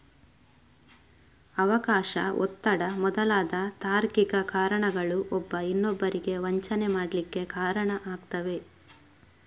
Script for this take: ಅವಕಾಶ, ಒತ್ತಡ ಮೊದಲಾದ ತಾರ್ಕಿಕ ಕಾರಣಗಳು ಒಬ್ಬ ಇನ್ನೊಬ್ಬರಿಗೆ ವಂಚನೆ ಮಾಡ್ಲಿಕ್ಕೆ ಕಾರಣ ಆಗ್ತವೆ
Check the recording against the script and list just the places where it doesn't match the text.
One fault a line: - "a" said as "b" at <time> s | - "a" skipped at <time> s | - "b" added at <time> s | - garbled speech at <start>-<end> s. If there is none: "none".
none